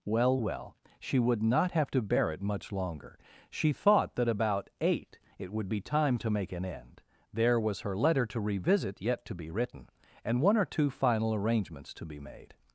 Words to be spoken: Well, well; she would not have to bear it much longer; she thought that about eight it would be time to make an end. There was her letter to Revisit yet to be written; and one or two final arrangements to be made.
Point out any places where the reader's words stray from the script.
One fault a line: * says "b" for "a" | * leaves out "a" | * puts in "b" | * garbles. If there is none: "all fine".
all fine